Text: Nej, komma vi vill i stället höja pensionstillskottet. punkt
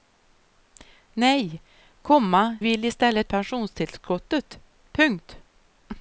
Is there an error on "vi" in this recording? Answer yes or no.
yes